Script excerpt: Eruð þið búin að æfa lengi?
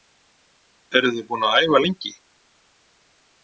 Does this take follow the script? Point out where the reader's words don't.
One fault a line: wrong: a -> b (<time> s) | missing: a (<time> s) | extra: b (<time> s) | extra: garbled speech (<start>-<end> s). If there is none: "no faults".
no faults